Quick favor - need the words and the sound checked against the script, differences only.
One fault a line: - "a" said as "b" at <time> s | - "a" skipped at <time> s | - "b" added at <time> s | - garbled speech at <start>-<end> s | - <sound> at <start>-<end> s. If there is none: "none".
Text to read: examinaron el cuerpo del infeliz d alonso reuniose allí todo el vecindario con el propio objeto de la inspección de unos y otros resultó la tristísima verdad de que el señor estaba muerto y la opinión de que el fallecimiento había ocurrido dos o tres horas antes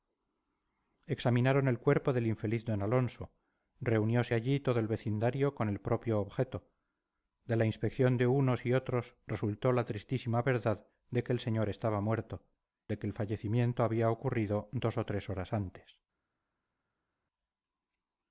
- "y la opinión" skipped at 12.4 s